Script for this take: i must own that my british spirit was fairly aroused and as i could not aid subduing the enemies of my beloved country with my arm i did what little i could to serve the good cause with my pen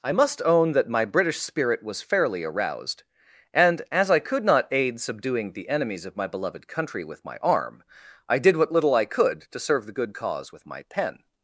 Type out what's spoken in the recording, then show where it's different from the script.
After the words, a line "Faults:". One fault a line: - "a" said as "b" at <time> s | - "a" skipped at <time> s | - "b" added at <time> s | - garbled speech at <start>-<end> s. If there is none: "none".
i must own that my british spirit was fairly aroused and as i could not aid subduing the enemies of my beloved country with my arm i did what little i could to serve the good cause with my pen
Faults:
none